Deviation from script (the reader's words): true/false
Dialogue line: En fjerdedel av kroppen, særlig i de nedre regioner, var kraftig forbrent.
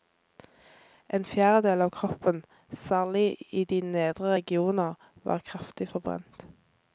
false